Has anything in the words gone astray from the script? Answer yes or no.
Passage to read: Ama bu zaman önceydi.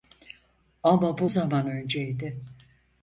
no